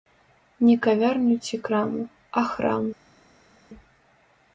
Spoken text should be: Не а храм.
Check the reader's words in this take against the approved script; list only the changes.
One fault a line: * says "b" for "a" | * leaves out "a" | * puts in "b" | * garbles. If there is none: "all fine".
* puts in "кавярню ці краму"